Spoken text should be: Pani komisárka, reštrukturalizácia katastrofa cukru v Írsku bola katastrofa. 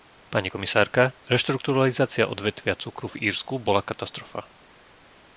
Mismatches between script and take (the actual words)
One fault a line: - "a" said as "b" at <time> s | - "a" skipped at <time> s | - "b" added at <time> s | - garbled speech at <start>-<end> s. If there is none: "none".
- "katastrofa" said as "odvetvia" at 2.3 s